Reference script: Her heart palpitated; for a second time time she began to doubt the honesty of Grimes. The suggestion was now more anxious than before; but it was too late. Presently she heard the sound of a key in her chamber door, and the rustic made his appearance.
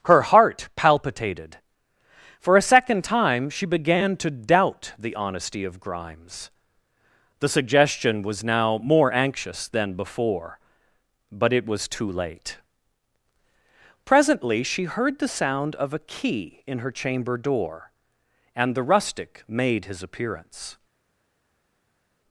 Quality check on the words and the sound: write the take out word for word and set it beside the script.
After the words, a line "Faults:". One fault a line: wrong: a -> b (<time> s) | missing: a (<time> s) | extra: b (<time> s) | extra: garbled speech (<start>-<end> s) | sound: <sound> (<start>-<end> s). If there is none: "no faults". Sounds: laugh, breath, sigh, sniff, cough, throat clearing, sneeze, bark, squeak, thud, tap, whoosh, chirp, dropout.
Her heart palpitated; for a second time she began to doubt the honesty of Grimes. The suggestion was now more anxious than before; but it was too late. Presently she heard the sound of a key in her chamber door, and the rustic made his appearance.
Faults:
missing: time (3.5 s)